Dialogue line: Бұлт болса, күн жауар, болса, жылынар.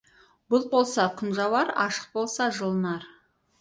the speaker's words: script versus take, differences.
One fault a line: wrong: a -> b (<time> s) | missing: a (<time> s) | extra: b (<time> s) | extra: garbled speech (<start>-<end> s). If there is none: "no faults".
extra: ашық (1.9 s)